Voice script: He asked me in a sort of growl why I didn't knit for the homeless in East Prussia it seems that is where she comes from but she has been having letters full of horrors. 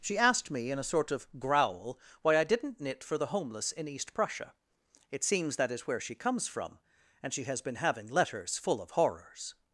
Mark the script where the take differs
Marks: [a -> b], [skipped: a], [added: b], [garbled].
[He -> She] asked me in a sort of growl why I didn't knit for the homeless in East Prussia it seems that is where she comes from [but -> and] she has been having letters full of horrors.